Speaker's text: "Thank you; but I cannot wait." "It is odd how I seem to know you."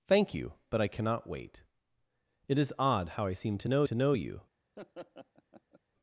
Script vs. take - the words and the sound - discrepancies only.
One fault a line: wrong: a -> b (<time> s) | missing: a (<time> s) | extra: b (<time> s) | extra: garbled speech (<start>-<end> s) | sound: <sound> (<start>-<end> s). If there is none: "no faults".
extra: to know (3.9 s)
sound: laugh (4.8-5.8 s)